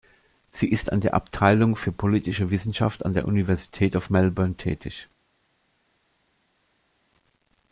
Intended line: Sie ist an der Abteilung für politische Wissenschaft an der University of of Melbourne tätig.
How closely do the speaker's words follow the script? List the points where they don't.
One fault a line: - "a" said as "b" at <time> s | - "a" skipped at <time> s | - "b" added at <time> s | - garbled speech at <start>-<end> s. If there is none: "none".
- "of" skipped at 4.1 s